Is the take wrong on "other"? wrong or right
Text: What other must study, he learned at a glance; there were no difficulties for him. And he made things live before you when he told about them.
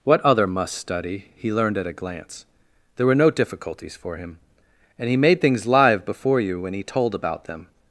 right